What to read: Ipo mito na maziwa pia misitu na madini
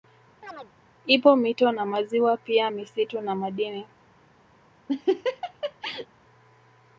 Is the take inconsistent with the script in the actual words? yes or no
no